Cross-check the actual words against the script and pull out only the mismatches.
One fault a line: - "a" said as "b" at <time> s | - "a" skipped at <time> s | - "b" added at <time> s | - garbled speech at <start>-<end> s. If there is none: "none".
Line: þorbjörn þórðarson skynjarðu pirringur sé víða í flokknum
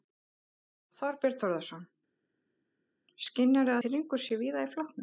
none